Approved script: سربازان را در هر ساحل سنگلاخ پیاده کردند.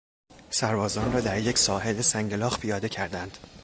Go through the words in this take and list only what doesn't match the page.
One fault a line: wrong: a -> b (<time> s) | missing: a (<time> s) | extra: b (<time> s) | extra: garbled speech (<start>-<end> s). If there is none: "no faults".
wrong: هر -> یک (1.4 s)